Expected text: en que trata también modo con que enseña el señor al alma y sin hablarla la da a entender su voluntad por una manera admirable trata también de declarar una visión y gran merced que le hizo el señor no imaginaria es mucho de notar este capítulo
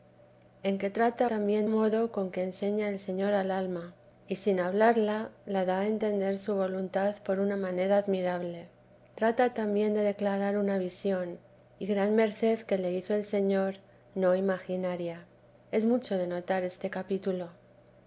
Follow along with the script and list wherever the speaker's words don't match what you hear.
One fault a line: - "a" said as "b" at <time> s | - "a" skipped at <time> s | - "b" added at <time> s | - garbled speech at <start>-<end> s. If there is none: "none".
none